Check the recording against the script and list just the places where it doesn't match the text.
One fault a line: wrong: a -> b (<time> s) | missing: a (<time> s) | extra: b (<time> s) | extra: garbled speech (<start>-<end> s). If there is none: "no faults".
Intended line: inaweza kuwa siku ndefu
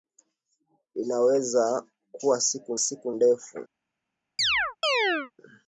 extra: siku (2.8 s)